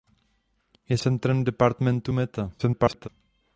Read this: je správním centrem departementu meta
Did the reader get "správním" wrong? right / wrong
wrong